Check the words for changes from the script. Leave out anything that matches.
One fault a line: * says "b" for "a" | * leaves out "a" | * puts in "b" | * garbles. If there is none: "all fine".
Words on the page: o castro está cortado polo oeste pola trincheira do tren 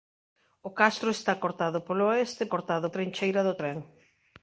* says "cortado" for "pola"